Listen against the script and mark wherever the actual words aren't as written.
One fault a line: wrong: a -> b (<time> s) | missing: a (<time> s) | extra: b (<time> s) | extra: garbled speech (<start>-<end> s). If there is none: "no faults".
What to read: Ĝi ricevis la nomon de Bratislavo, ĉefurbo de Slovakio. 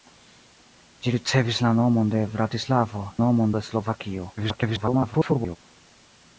wrong: ĉefurbo -> nomon (3.2 s)
extra: garbled speech (4.4-5.6 s)